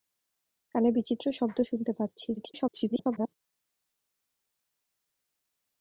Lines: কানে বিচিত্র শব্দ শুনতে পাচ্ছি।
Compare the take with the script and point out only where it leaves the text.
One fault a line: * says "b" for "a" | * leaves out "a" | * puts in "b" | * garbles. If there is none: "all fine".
* garbles